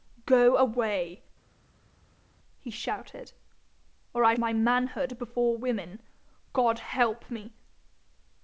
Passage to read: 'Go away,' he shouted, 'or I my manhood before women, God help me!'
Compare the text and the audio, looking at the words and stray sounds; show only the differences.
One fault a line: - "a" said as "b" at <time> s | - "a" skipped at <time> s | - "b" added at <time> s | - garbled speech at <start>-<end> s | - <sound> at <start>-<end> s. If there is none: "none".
none